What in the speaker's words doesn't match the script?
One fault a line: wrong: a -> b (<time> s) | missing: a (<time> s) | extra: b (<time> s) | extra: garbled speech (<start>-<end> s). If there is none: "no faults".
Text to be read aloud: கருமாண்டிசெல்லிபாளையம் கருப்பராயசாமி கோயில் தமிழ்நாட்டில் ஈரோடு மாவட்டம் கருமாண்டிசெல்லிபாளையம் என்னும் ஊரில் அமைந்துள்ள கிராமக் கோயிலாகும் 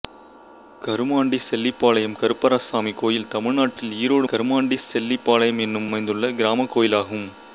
missing: மாவட்டம் (4.3 s)
missing: ஊரில் (5.9 s)